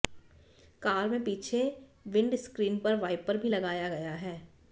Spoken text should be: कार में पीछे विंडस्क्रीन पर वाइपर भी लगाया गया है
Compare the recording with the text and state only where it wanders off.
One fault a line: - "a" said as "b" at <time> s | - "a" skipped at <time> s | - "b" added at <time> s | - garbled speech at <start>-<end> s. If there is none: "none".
none